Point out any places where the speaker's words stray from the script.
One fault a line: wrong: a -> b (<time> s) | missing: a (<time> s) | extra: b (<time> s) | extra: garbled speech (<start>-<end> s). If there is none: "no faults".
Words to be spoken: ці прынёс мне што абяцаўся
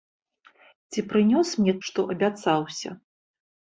no faults